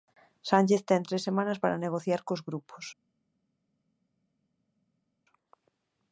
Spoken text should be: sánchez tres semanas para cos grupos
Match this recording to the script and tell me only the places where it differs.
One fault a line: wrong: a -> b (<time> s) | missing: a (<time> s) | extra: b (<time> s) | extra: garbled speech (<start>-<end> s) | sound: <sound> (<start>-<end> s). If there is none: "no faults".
extra: ten (0.9 s)
extra: negociar (1.9 s)